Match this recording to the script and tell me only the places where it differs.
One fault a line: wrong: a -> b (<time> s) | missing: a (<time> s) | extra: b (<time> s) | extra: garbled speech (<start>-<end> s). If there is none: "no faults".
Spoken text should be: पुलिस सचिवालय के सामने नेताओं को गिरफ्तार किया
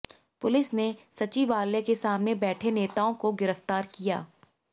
extra: ने (0.7 s)
extra: बैठे (2.5 s)